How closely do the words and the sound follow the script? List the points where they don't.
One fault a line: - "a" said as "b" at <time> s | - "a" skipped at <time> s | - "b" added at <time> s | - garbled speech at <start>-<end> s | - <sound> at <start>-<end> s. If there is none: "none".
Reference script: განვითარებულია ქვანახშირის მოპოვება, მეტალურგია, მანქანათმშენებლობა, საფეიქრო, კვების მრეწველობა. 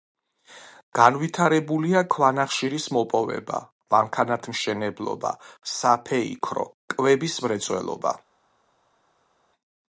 - "მეტალურგია" skipped at 3.6 s